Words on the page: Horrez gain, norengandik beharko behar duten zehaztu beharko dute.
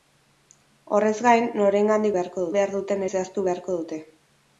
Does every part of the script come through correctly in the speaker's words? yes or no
yes